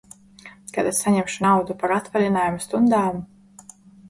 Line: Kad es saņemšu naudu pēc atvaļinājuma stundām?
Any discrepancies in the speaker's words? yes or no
yes